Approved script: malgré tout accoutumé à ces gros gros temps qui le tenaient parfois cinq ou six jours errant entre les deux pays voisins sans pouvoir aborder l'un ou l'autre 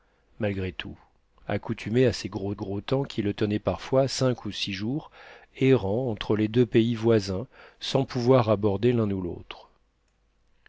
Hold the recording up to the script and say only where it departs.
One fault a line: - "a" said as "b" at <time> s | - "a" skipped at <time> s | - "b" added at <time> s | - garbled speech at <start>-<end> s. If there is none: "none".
none